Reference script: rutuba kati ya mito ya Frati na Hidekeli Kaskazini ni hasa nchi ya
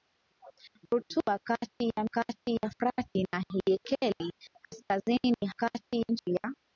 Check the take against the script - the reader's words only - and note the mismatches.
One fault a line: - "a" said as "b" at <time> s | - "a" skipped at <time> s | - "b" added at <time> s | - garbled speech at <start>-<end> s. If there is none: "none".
- "mito" said as "kati" at 2.1 s
- "hasa" said as "kati" at 5.6 s